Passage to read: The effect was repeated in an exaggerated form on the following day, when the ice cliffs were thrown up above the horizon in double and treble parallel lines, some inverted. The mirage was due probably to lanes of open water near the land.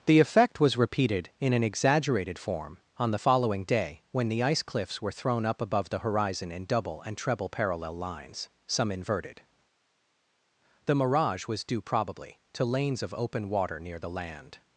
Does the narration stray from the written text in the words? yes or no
no